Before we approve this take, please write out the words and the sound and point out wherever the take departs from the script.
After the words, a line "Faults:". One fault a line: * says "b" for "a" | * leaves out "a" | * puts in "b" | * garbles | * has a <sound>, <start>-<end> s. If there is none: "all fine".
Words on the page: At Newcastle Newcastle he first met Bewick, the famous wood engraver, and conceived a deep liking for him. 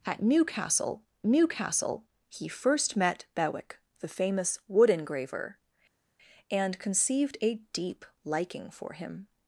At Newcastle Newcastle he first met Bewick, the famous wood engraver, and conceived a deep liking for him.
Faults:
all fine